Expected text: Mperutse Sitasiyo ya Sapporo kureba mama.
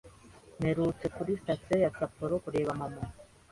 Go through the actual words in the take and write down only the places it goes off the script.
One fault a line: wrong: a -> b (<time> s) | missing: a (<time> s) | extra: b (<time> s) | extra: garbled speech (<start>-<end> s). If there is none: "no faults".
extra: kuri (1.1 s)